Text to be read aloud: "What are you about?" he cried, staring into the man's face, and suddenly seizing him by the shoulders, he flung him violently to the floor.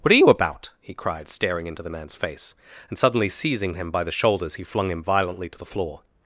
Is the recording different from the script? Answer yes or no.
no